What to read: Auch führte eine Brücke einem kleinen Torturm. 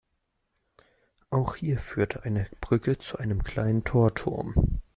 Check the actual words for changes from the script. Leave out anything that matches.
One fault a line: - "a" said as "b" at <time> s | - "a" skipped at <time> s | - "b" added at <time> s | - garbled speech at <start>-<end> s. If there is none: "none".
- "hier" added at 1.6 s
- "zu" added at 3.0 s